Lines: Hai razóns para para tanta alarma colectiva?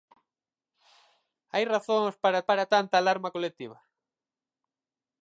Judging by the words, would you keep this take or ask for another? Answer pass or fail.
pass